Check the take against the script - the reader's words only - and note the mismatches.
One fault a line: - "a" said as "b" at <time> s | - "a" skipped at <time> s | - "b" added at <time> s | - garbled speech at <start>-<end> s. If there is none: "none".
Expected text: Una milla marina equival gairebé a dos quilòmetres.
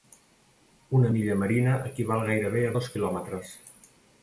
none